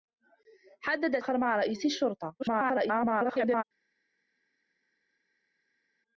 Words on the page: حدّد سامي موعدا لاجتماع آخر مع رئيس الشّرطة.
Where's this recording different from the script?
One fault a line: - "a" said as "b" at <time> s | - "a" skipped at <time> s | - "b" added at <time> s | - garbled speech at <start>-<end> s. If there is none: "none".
- "سامي موعدا لاجتماع" skipped at 1.2 s
- garbled speech at 2.4-3.6 s